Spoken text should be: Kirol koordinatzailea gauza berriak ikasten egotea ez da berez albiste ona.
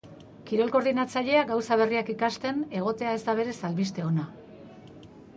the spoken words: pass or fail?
pass